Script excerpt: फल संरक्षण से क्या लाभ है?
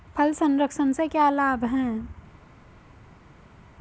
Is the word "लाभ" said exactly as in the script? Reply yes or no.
yes